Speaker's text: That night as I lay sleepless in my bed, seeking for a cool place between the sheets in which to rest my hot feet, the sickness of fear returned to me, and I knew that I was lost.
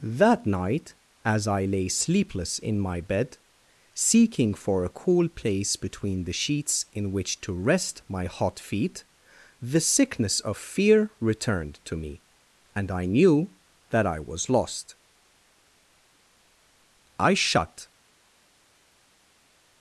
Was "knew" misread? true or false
false